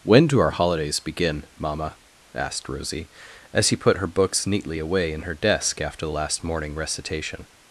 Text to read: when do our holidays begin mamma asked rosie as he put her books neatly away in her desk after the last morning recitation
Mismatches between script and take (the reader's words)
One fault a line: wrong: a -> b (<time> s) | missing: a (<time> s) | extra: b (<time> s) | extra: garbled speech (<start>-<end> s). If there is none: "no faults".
no faults